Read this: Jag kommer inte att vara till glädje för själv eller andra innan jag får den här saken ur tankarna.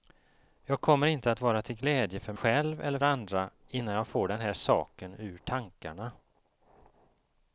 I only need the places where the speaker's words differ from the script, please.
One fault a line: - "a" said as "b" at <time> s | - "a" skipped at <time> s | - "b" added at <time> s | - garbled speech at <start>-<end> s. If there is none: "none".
none